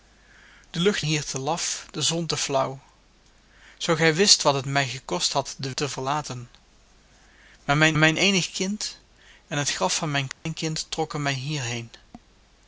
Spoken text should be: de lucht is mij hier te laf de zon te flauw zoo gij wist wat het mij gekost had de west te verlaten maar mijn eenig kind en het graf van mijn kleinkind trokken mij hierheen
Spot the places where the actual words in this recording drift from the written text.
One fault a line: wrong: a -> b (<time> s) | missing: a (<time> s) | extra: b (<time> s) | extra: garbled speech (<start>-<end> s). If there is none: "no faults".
missing: is mij (1.0 s)
missing: west (5.7 s)
extra: mijn (8.0 s)